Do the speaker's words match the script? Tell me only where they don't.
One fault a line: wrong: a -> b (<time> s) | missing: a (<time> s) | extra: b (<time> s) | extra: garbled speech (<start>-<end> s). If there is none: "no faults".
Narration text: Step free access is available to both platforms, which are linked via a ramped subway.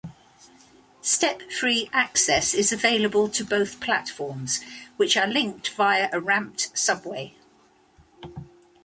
no faults